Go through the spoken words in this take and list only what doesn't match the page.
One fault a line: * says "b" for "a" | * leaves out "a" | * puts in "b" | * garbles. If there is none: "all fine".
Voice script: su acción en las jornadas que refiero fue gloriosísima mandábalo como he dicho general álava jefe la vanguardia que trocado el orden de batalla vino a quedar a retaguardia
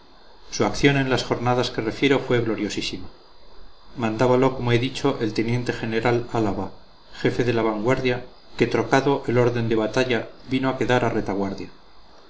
* puts in "el teniente"
* puts in "de"